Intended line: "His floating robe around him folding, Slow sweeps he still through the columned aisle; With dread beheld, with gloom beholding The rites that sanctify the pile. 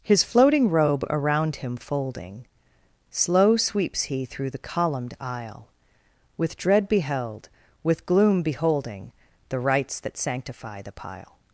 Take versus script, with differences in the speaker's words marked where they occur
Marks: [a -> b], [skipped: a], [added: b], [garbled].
"His floating robe around him folding, Slow sweeps he [skipped: still] through the columned aisle; With dread beheld, with gloom beholding The rites that sanctify the pile.